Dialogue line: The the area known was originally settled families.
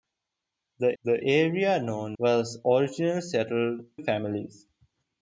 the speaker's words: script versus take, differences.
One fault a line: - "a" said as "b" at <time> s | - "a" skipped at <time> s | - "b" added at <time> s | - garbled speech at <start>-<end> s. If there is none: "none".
none